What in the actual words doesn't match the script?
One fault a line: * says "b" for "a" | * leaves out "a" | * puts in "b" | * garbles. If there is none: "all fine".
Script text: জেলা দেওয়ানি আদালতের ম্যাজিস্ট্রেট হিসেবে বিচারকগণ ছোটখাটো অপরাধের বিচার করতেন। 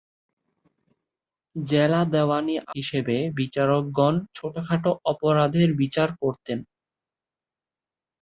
* leaves out "আদালতের ম্যাজিস্ট্রেট"